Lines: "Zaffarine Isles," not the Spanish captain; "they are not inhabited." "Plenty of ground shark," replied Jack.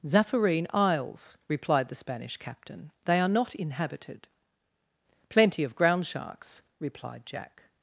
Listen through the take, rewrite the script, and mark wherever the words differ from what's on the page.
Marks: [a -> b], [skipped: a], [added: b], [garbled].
"Zaffarine Isles," [not -> replied] the Spanish captain; "they are not inhabited." "Plenty of ground [shark," -> sharks] replied Jack.